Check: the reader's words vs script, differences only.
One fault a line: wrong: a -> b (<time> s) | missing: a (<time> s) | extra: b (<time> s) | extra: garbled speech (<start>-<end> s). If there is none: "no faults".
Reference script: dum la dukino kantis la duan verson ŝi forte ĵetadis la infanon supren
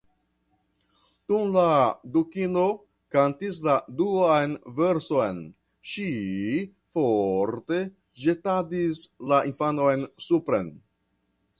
no faults